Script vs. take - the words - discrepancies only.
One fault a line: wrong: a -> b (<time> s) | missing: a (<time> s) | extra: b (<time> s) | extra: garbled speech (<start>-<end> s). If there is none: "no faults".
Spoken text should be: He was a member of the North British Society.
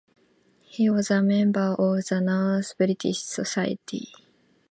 no faults